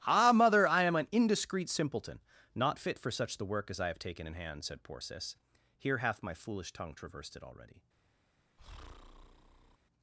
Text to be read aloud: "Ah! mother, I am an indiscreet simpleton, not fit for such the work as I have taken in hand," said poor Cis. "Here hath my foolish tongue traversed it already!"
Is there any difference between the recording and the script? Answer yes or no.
no